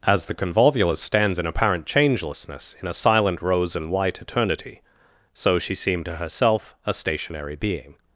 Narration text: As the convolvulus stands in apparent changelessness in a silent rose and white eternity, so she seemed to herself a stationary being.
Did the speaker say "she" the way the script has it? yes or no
yes